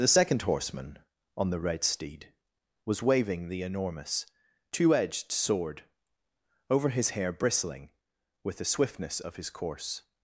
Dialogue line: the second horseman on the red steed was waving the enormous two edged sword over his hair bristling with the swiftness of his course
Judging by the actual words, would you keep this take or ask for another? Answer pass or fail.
pass